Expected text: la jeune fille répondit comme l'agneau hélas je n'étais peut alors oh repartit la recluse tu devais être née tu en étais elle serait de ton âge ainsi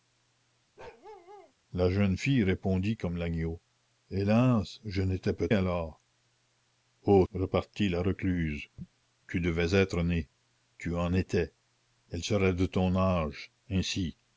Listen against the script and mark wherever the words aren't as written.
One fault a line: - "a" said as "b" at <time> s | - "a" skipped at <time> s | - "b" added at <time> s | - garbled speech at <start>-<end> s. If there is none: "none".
none